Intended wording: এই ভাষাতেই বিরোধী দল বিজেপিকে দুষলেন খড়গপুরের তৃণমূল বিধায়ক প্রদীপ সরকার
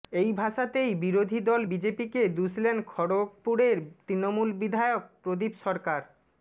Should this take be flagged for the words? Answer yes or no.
no